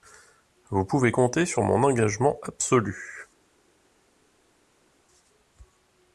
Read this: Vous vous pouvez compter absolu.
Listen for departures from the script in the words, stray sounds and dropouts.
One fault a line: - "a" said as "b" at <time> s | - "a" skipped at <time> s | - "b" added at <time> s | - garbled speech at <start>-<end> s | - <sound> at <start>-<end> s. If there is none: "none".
- "vous" skipped at 0.8 s
- "sur mon engagement" added at 1.4 s